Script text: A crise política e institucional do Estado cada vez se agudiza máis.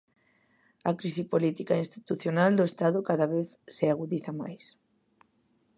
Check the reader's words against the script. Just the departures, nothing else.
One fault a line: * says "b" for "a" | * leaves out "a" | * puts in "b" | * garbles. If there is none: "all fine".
all fine